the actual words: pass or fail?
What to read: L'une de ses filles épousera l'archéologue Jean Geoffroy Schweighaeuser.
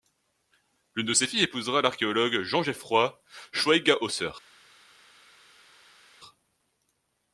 pass